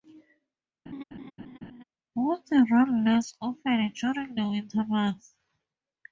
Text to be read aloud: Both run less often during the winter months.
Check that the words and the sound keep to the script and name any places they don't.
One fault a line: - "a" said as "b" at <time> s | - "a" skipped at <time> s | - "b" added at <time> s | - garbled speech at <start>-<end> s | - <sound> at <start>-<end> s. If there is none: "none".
- laugh at 0.9-1.8 s